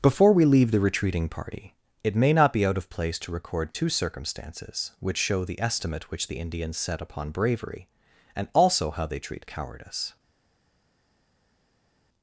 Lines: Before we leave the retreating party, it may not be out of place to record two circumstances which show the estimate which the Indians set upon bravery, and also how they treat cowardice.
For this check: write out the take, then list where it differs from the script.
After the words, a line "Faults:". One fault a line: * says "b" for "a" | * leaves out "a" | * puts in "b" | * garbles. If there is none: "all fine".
Before we leave the retreating party, it may not be out of place to record two circumstances which show the estimate which the Indians set upon bravery, and also how they treat cowardice.
Faults:
all fine